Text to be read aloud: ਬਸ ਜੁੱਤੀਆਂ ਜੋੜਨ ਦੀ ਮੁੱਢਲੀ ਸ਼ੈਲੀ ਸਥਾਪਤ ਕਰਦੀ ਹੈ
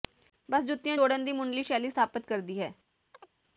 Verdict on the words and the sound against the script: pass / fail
fail